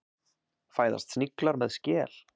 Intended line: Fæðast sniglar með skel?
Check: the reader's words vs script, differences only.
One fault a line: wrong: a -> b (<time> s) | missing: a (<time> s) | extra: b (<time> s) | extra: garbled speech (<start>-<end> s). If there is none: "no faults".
no faults